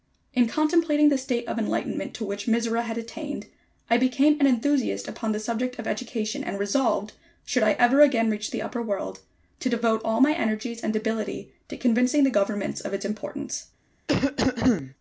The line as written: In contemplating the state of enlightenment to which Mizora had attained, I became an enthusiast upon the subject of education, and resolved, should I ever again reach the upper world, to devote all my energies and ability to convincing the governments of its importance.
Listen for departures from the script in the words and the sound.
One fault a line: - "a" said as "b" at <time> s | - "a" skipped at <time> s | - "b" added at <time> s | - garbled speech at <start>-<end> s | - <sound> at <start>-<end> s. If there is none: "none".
- cough at 14.1-14.9 s